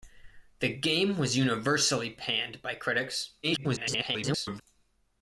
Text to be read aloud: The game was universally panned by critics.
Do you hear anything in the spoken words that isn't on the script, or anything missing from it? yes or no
yes